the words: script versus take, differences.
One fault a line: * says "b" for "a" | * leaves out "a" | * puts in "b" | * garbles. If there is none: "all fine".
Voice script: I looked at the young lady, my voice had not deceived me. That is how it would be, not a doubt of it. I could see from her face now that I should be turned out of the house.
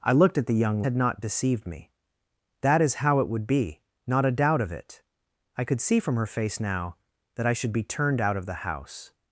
* leaves out "lady my voice"